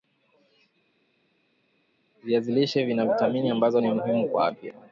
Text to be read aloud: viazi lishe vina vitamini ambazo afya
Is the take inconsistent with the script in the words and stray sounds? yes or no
yes